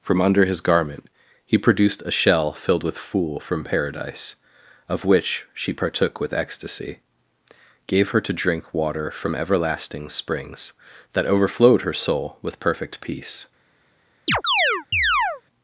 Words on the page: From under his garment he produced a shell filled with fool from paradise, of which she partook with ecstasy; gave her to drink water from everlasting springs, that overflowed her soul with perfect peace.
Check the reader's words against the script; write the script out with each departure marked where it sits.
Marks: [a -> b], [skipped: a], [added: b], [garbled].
From under his garment he produced a shell filled with fool from paradise, of which she partook with ecstasy; gave her to drink water from everlasting springs, that overflowed her soul with perfect peace.